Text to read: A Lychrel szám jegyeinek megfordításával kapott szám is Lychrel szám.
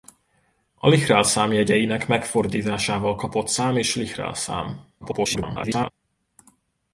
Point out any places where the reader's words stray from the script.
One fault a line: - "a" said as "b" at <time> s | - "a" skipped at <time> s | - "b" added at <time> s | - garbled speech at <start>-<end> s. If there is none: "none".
- garbled speech at 5.0-5.9 s